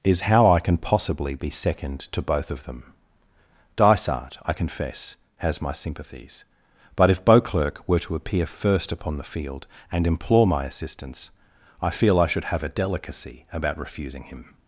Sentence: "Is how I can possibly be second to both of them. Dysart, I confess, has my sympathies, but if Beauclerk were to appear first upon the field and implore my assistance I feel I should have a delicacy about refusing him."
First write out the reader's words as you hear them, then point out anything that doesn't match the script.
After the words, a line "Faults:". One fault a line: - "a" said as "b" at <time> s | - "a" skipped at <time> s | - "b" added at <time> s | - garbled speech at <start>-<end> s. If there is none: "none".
"Is how I can possibly be second to both of them. Dysart, I confess, has my sympathies, but if Beauclerk were to appear first upon the field and implore my assistance I feel I should have a delicacy about refusing him."
Faults:
none